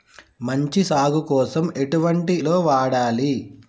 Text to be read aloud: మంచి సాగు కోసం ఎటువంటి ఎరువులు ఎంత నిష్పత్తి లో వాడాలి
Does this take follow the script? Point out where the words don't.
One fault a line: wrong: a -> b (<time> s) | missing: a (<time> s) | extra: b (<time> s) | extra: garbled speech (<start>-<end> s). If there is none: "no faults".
missing: ఎరువులు ఎంత నిష్పత్తి (2.4 s)